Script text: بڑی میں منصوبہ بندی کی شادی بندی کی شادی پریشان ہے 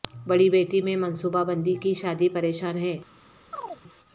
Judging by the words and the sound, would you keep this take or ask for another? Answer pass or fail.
fail